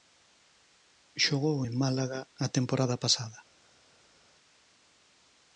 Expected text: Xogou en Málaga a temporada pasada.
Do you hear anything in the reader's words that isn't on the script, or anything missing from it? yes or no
no